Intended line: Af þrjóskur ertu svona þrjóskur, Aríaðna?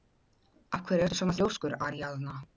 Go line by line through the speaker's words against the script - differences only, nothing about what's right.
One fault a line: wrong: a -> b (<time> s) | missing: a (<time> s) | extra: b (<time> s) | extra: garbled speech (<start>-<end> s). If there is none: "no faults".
wrong: þrjóskur -> hverju (0.9 s)